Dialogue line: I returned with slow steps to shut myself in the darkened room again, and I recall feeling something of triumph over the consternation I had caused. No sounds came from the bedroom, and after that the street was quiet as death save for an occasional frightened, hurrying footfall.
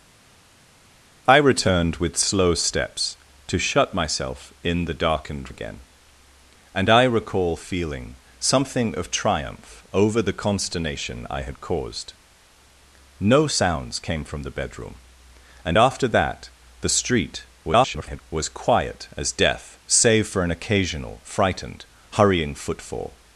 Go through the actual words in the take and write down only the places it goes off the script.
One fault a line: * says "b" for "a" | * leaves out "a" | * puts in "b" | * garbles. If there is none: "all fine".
* leaves out "room"
* garbles